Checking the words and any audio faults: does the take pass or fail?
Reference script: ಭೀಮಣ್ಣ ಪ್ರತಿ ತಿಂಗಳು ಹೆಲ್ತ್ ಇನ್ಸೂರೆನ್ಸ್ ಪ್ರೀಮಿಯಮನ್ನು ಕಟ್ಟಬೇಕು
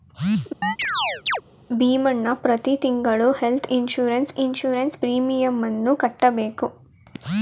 fail